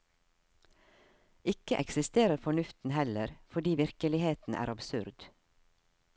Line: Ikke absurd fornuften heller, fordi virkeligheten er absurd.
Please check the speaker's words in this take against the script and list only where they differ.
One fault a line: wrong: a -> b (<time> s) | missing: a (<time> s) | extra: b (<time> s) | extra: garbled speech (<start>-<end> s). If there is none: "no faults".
wrong: absurd -> eksisterer (1.8 s)